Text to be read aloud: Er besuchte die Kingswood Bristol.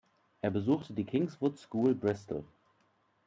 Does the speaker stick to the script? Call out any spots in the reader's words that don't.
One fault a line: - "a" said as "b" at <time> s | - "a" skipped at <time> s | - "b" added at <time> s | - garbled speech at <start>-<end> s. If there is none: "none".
- "School" added at 1.6 s